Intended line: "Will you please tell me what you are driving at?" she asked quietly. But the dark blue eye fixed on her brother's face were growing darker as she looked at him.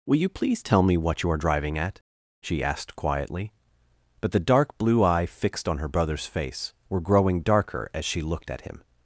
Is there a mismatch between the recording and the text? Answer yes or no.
no